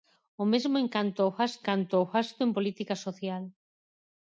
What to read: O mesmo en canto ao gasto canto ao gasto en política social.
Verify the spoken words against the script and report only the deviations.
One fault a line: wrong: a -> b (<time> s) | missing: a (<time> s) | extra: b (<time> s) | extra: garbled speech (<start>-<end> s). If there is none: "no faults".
no faults